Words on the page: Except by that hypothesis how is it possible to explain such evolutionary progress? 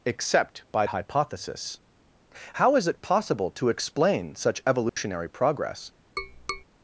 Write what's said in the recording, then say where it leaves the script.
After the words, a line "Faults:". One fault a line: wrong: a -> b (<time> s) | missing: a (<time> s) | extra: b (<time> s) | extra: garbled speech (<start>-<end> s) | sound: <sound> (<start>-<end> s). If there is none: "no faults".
Except by hypothesis how is it possible to explain such evolutionary progress?
Faults:
missing: that (0.9 s)
sound: dropout (4.9-5.0 s)
sound: tap (6.2-6.6 s)